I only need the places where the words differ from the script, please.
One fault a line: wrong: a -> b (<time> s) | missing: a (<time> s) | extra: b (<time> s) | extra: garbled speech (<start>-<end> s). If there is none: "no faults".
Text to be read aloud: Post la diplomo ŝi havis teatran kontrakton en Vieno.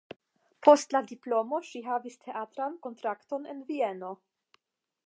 no faults